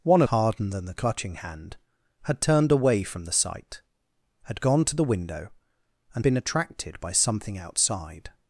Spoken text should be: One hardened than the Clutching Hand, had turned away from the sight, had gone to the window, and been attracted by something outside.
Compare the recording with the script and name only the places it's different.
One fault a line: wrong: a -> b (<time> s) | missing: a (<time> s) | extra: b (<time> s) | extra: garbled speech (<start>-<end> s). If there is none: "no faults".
no faults